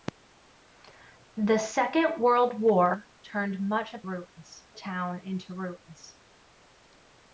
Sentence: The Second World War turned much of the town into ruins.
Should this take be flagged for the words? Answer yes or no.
yes